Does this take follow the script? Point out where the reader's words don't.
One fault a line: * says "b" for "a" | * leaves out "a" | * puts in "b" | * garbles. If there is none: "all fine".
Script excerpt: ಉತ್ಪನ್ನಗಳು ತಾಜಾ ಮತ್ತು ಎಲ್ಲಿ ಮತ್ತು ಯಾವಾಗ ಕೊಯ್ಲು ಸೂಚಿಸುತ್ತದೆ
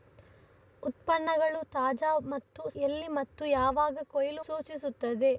all fine